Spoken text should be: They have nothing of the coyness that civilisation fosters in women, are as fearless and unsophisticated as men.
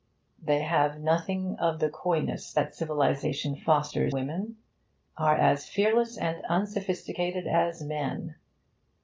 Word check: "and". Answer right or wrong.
right